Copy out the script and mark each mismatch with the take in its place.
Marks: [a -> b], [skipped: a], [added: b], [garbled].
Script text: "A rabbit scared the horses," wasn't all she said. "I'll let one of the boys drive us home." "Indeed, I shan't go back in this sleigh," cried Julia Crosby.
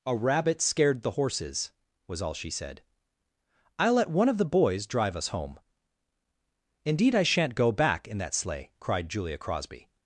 "A rabbit scared the horses," [wasn't -> was] all she said. "I'll let one of the boys drive us home." "Indeed, I shan't go back in [this -> that] sleigh," cried Julia Crosby.